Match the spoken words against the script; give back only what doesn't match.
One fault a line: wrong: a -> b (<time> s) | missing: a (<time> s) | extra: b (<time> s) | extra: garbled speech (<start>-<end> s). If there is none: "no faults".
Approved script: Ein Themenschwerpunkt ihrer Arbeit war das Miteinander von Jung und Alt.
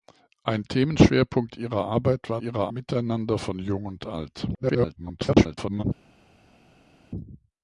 wrong: das -> ihrer (2.4 s)
extra: garbled speech (4.5-5.8 s)